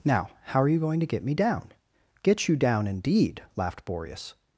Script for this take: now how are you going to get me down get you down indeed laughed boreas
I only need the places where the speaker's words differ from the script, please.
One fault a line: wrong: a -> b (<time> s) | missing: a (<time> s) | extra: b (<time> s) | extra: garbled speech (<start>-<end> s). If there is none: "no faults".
no faults